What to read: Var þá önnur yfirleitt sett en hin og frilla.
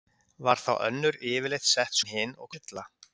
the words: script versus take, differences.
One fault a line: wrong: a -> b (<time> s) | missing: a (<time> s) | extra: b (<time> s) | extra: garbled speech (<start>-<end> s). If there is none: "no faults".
no faults